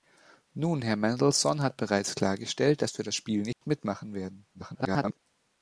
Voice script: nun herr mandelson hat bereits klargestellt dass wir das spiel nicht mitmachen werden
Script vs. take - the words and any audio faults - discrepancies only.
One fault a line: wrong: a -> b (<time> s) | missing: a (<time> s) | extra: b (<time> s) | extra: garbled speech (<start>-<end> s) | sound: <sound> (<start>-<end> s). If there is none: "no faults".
sound: dropout (3.5-3.6 s)
extra: garbled speech (4.5-5.2 s)